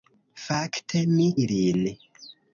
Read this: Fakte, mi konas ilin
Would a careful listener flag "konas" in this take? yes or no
yes